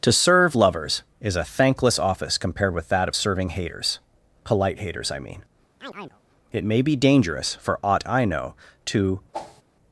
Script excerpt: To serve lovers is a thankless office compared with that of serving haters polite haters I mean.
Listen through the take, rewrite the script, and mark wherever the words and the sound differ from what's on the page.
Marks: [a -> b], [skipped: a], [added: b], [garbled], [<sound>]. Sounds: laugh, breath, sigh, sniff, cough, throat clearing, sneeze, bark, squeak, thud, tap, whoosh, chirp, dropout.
To serve lovers is a thankless office compared with that of serving haters polite haters I mean. [chirp] [added: It may be dangerous for aught I know to] [whoosh]